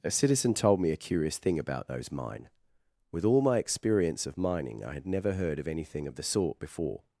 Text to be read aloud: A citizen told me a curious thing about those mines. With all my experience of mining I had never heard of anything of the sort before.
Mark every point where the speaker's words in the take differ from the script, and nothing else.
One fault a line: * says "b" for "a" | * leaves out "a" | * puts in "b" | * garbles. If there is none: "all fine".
* says "mine" for "mines"